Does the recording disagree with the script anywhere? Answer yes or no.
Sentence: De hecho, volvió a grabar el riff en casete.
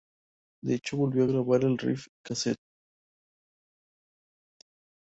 yes